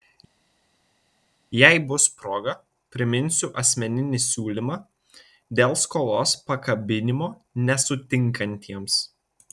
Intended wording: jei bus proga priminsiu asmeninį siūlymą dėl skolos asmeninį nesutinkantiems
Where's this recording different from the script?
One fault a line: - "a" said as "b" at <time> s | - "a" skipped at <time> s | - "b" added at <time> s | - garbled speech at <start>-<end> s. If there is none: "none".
- "asmeninį" said as "pakabinimo" at 6.5 s